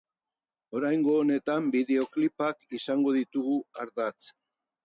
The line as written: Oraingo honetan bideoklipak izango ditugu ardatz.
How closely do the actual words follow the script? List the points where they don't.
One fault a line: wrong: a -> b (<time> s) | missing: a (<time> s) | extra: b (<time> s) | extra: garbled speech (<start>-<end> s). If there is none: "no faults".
no faults